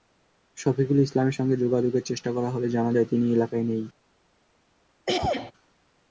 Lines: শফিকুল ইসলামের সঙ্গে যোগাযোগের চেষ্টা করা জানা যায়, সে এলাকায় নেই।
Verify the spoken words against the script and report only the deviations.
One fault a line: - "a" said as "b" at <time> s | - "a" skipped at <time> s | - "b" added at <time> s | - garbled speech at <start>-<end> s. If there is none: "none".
- "হলে" added at 2.5 s
- "সে" said as "তিনি" at 3.1 s